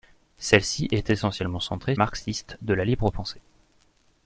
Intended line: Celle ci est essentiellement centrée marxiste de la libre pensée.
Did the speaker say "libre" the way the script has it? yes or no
yes